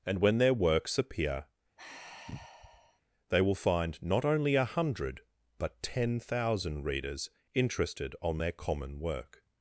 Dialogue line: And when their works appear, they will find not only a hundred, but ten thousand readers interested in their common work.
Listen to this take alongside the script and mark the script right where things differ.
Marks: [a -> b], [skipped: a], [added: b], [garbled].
And when their works appear, they will find not only a hundred, but ten thousand readers interested [in -> on] their common work.